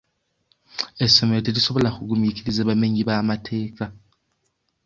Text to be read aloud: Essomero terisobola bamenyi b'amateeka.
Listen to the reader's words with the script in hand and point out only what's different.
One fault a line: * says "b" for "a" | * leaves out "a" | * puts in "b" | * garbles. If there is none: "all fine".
* puts in "kugumiikiriza"